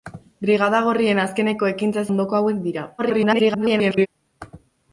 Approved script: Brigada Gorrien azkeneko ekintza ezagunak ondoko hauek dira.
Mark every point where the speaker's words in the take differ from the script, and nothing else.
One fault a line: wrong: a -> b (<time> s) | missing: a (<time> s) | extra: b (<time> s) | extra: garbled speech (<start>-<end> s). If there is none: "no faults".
missing: ezagunak (2.1 s)
extra: garbled speech (3.0-4.1 s)